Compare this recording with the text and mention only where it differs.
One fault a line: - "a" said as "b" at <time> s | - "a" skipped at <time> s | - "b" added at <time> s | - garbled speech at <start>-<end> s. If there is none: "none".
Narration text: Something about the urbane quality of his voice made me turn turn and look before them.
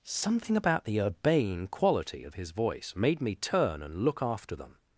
- "turn" skipped at 3.8 s
- "before" said as "after" at 4.2 s